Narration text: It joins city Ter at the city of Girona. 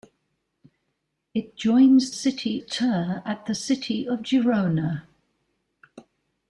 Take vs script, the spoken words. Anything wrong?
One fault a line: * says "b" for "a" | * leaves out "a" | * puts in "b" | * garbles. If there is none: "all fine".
all fine